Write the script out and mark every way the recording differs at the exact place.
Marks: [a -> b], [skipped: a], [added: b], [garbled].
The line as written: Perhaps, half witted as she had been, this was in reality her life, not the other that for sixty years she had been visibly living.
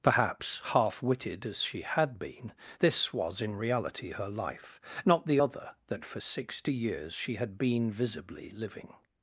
Perhaps, half witted as she had been, this was in reality her life, not the other that for sixty years she had been visibly living.